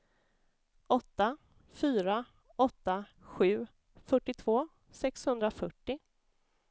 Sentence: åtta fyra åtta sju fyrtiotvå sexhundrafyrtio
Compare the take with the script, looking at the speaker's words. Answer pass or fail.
pass